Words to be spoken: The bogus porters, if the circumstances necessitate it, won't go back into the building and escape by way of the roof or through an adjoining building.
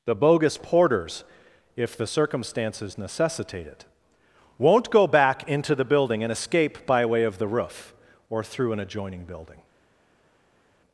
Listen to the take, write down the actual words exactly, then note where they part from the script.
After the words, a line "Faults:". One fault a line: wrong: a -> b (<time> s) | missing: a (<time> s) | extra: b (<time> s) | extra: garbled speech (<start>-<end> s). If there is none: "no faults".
The bogus porters, if the circumstances necessitate it, won't go back into the building and escape by way of the roof or through an adjoining building.
Faults:
no faults